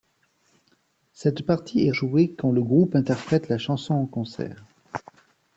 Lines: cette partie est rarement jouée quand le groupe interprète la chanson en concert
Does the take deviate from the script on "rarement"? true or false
true